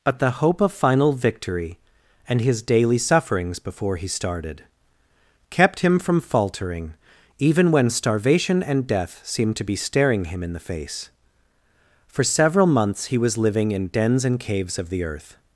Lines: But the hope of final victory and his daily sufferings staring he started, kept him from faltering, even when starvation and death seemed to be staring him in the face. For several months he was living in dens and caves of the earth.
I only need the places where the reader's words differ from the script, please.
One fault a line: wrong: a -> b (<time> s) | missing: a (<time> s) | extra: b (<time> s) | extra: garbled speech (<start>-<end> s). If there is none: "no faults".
wrong: staring -> before (3.6 s)